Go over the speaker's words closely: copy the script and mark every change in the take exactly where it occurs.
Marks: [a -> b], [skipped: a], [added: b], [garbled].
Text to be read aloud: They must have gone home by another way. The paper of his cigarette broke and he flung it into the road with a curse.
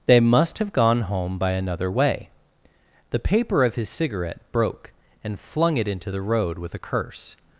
They must have gone home by another way. The paper of his cigarette broke and [skipped: he] flung it into the road with a curse.